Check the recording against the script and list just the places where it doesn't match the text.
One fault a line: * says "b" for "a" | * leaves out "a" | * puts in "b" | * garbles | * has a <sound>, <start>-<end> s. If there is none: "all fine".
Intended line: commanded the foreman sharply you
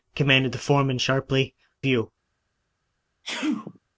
* has a sneeze, 3.2-3.8 s